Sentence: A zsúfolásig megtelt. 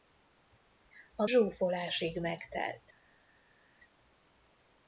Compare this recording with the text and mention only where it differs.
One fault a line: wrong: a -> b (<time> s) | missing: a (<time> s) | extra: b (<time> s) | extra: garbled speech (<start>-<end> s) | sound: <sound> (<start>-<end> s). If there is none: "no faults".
no faults